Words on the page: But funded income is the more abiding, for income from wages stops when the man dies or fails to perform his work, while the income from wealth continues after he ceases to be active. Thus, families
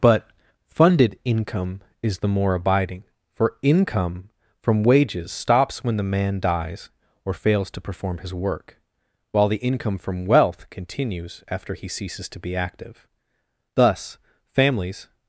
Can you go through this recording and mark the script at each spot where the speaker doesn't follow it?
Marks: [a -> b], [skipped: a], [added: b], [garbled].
But funded income is the more abiding, for income from wages stops when the man dies or fails to perform his work, while the income from wealth continues after he ceases to be active. Thus, families